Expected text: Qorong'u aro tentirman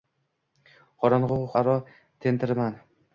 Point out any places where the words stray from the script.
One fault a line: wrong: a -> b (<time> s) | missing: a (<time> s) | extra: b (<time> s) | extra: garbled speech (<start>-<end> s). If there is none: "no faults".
no faults